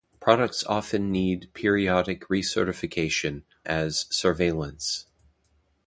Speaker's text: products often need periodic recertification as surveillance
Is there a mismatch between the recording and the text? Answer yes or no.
no